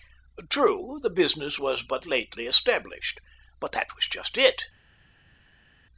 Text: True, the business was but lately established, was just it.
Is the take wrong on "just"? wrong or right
right